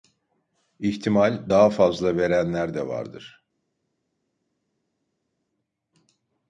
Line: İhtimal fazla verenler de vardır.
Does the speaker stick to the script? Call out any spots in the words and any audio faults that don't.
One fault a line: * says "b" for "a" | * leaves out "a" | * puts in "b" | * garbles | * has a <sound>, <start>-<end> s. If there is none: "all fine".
* puts in "daha"